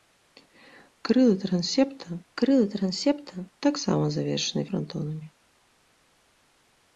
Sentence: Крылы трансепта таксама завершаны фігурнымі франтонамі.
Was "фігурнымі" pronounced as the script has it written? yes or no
no